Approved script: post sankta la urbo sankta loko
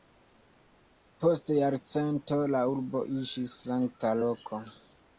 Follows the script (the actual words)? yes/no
no